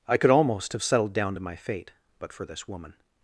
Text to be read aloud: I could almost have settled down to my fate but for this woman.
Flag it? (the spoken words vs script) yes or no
no